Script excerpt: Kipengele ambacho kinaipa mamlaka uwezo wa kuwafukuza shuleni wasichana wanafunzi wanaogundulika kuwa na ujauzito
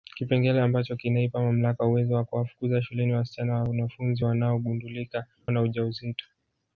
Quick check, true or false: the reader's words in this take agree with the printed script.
false